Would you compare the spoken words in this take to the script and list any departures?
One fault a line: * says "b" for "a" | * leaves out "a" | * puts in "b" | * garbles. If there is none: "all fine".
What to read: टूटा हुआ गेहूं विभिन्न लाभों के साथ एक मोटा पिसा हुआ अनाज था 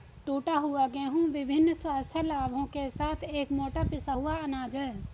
* puts in "स्वास्थ्य"
* says "है" for "था"